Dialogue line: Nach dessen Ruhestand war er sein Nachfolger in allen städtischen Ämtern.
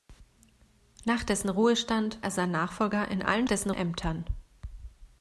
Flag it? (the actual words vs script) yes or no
yes